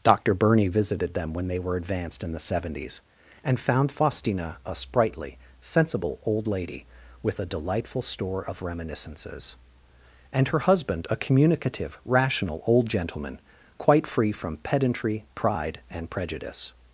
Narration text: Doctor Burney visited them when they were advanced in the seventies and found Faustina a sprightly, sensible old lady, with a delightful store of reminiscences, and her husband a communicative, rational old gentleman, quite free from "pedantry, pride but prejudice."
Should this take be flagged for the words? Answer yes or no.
yes